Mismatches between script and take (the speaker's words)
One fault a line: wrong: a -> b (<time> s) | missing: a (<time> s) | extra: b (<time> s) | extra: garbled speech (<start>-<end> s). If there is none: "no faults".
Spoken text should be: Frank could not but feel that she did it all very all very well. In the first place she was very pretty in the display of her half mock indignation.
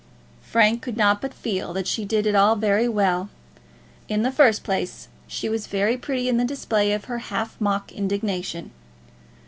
missing: all very (2.9 s)